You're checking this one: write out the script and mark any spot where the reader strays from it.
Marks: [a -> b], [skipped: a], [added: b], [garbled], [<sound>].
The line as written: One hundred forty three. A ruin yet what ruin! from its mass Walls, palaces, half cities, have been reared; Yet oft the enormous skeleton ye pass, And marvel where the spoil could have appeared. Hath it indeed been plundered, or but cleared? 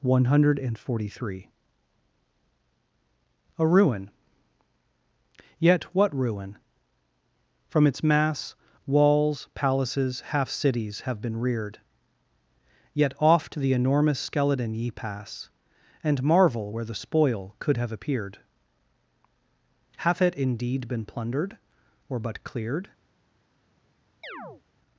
One hundred forty three. A ruin yet what ruin! from its mass Walls, palaces, half cities, have been reared; Yet oft the enormous skeleton ye pass, And marvel where the spoil could have appeared. Hath it indeed been plundered, or but cleared? [chirp]